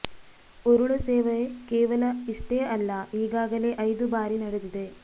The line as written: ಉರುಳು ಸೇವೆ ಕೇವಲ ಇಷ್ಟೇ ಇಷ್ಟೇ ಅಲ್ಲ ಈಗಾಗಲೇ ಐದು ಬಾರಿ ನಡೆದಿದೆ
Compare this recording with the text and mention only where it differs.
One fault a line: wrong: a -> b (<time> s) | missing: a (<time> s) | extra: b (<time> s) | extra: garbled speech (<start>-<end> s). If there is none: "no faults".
missing: ಇಷ್ಟೇ (2.6 s)